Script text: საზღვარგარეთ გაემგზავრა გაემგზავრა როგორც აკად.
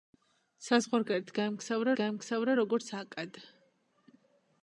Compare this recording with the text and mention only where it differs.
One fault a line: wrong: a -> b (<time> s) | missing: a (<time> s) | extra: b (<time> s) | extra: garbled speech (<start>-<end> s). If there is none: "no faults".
no faults